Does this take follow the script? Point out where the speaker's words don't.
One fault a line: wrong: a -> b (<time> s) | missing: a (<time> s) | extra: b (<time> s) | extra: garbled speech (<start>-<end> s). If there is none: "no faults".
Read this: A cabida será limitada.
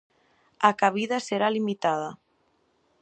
no faults